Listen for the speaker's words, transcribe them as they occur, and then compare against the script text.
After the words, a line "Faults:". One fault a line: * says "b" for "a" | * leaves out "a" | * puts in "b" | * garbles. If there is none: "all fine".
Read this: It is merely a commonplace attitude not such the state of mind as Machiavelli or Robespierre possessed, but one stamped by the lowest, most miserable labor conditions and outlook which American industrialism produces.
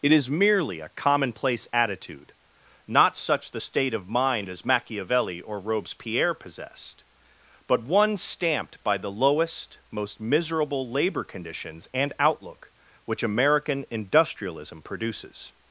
It is merely a commonplace attitude not such the state of mind as Machiavelli or Robespierre possessed, but one stamped by the lowest, most miserable labor conditions and outlook which American industrialism produces.
Faults:
all fine